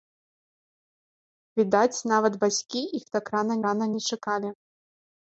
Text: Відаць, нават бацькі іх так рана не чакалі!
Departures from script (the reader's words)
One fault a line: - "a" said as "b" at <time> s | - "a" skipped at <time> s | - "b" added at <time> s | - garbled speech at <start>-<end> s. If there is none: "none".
- "рана" added at 3.7 s